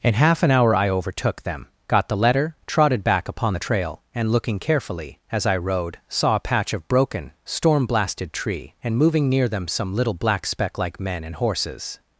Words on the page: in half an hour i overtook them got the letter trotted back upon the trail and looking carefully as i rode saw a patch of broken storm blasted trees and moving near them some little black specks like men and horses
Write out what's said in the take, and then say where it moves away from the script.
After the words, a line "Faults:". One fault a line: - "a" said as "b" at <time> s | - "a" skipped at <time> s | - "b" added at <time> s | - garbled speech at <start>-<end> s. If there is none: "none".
in half an hour i overtook them got the letter trotted back upon the trail and looking carefully as i rode saw a patch of broken storm blasted tree and moving near them some little black speck like men and horses
Faults:
- "trees" said as "tree" at 8.3 s
- "specks" said as "speck" at 10.5 s